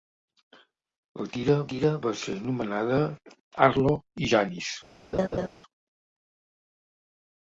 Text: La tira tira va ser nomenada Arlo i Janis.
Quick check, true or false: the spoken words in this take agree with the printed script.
true